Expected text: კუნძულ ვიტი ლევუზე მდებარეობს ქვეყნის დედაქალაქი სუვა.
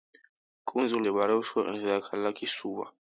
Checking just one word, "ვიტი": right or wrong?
wrong